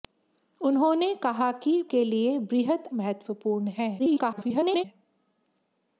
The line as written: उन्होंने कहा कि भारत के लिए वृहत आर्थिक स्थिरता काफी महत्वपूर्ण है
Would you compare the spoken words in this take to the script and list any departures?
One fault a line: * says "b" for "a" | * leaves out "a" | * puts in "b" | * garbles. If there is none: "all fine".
* leaves out "भारत"
* leaves out "आर्थिक स्थिरता काफी"
* garbles